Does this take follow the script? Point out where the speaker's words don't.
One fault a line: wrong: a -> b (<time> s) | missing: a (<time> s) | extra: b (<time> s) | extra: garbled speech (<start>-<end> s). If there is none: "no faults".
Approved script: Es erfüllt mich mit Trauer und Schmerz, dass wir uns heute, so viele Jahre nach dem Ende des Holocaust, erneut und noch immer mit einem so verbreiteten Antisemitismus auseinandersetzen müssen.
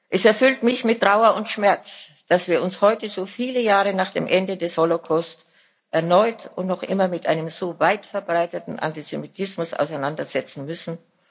extra: weit (7.8 s)